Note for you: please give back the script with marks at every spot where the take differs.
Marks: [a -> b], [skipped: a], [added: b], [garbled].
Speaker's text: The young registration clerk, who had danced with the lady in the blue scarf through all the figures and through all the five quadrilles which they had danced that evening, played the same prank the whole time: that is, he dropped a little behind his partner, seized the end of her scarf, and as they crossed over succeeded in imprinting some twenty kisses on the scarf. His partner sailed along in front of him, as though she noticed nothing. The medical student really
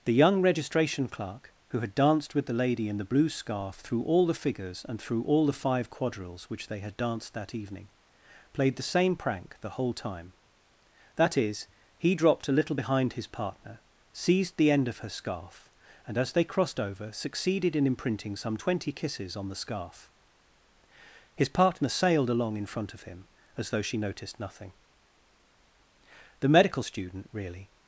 The young registration clerk, who had danced with the lady in the blue scarf through all the figures and through all the five quadrilles which they had danced that evening, played the same prank the whole time: that is, he dropped a little behind his partner, seized the end of her scarf, and as they crossed over succeeded in imprinting some twenty kisses on the scarf. His partner sailed along in front of him, as though she noticed nothing. The medical student really